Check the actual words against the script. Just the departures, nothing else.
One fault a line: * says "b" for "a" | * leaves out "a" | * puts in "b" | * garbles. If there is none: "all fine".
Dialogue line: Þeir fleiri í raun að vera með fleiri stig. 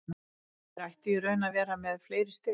* says "ættu" for "fleiri"